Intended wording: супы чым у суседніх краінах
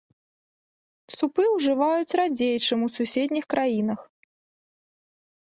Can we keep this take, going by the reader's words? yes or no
no